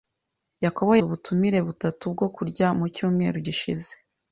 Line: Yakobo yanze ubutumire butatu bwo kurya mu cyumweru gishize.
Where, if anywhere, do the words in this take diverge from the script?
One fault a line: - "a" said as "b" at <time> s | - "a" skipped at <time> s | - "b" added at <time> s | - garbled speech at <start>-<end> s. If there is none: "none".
- "yanze" skipped at 0.9 s